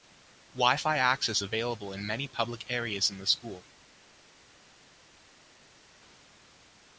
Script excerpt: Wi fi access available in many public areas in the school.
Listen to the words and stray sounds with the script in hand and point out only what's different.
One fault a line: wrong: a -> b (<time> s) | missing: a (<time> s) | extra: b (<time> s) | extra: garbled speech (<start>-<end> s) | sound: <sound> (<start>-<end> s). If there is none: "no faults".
no faults